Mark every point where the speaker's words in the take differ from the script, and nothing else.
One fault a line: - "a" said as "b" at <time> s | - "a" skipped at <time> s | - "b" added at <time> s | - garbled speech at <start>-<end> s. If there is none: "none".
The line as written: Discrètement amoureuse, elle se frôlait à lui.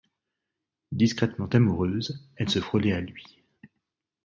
none